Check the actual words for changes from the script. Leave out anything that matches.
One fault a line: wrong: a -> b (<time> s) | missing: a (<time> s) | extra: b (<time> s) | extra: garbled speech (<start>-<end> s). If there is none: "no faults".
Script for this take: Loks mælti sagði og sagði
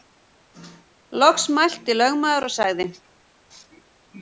wrong: sagði -> lögmaður (2.0 s)